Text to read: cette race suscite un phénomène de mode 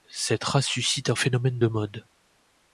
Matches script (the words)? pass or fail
pass